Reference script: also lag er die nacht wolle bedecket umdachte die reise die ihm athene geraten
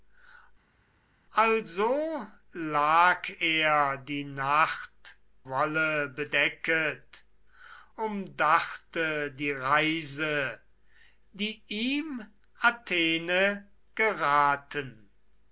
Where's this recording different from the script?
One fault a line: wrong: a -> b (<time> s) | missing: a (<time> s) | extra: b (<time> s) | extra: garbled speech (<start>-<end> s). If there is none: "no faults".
no faults